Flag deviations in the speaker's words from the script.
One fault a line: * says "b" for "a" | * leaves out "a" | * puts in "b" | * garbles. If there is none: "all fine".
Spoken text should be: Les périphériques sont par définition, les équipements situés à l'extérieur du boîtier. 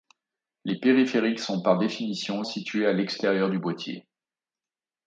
* leaves out "les équipements"